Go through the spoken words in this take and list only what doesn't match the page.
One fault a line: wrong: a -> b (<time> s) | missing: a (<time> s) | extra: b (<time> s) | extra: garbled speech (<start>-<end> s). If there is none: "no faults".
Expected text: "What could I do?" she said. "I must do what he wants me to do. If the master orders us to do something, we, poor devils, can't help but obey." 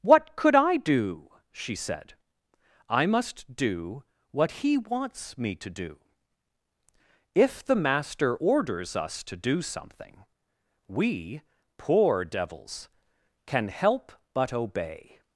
wrong: can't -> can (13.4 s)